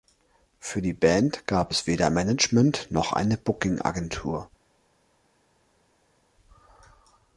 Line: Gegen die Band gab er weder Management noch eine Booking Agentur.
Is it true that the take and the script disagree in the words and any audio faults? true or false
true